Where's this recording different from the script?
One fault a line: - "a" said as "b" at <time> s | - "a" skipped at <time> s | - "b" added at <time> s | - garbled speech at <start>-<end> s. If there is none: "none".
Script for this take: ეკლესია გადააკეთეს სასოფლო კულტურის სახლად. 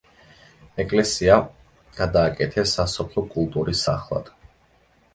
none